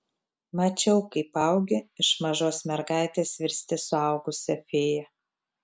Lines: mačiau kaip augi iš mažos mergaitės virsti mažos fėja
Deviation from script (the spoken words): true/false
true